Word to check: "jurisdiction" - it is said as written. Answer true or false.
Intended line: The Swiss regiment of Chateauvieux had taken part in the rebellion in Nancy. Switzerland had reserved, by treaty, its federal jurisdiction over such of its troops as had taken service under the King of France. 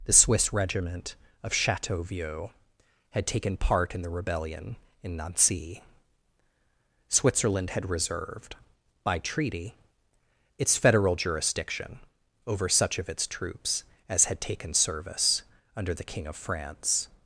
true